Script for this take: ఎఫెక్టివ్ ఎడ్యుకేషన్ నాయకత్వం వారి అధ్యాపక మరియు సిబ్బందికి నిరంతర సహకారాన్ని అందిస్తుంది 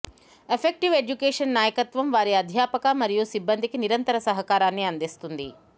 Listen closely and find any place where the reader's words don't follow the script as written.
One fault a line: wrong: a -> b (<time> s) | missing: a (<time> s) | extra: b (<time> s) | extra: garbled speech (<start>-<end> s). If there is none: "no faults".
no faults